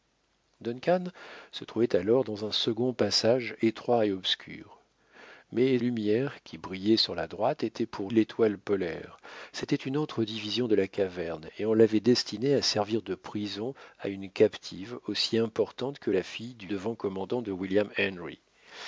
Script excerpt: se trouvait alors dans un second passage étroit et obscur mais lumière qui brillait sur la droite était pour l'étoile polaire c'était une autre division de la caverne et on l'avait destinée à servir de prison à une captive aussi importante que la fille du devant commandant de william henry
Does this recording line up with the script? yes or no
yes